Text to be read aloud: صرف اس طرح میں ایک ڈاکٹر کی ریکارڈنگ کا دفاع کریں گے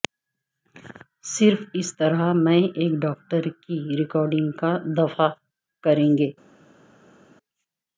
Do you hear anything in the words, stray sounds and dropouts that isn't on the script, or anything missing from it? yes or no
no